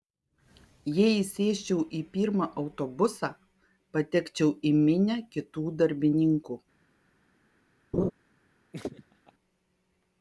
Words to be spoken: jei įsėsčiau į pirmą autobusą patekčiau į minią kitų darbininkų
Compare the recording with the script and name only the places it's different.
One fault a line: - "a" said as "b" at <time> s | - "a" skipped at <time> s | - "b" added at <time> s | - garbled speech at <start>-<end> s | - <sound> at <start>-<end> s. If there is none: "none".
- laugh at 7.9-8.1 s
- laugh at 8.7-9.3 s